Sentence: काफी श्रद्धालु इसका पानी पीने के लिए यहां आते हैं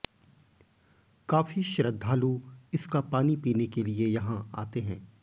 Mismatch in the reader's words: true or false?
false